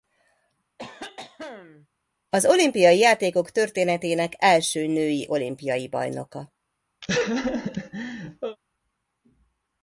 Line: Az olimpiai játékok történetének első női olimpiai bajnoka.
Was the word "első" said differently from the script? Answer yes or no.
no